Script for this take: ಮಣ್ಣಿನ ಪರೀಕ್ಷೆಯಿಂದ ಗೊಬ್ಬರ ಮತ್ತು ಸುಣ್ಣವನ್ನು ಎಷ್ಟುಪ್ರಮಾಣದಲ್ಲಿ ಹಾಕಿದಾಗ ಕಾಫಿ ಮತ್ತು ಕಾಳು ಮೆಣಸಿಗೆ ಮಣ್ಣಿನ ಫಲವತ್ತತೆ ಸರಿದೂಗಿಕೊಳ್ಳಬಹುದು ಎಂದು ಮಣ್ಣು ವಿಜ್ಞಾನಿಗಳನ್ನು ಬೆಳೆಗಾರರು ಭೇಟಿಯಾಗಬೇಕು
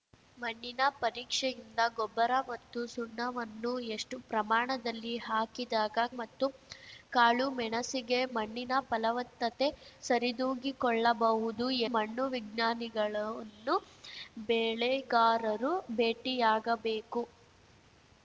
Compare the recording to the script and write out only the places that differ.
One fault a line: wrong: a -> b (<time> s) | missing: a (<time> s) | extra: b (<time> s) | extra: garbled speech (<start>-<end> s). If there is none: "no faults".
missing: ಕಾಫಿ (6.0 s)
missing: ಎಂದು (11.7 s)